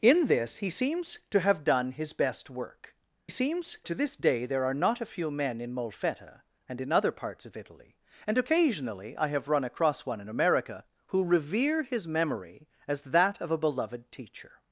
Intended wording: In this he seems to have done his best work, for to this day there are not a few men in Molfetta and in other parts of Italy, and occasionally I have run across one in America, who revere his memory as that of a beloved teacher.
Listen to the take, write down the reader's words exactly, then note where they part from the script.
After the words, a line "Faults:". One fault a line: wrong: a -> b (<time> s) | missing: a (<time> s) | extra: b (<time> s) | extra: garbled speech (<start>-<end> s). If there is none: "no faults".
In this he seems to have done his best work, seems to this day there are not a few men in Molfetta and in other parts of Italy, and occasionally I have run across one in America, who revere his memory as that of a beloved teacher.
Faults:
wrong: for -> seems (3.3 s)